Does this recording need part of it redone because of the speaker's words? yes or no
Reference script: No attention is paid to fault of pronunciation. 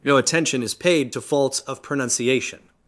yes